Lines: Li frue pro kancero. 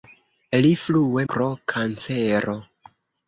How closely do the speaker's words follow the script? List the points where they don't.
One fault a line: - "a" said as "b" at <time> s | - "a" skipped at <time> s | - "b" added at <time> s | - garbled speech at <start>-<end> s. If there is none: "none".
none